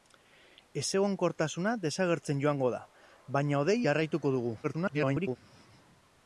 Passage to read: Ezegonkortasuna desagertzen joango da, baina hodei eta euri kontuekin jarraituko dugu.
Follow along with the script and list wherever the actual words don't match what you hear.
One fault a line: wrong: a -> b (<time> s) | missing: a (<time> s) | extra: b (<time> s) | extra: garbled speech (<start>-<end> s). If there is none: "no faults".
missing: eta euri kontuekin (3.8 s)
extra: garbled speech (4.6-5.4 s)